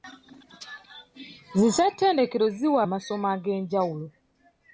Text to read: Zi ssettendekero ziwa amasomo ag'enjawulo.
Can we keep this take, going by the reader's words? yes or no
yes